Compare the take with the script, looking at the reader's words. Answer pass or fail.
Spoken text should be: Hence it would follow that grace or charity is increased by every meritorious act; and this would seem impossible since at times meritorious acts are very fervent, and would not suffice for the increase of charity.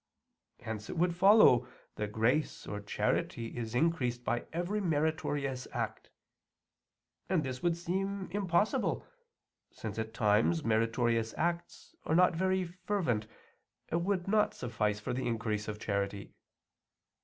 fail